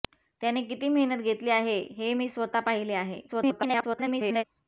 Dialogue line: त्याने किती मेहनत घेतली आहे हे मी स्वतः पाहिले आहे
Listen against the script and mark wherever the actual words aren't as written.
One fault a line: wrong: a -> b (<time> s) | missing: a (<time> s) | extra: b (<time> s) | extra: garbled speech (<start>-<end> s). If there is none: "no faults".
extra: garbled speech (3.3-4.4 s)